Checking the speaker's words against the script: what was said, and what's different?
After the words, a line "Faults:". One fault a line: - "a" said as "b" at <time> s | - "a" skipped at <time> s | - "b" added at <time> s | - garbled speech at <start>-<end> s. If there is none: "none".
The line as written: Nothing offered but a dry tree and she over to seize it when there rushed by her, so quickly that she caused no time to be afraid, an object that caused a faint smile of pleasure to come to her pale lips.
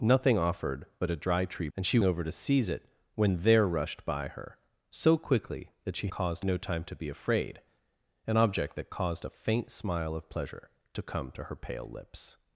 Nothing offered but a dry tree and she over to seize it when there rushed by her, so quickly that she caused no time to be afraid, an object that caused a faint smile of pleasure to come to her pale lips.
Faults:
none